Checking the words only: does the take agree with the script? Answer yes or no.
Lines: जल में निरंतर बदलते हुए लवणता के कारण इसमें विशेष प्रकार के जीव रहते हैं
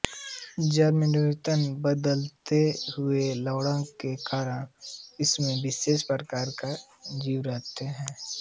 yes